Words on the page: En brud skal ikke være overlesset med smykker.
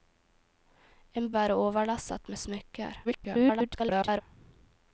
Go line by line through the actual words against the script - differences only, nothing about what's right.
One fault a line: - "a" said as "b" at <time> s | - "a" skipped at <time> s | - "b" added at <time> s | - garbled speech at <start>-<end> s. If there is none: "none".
- "brud skal ikke" skipped at 1.3 s
- garbled speech at 3.0-4.2 s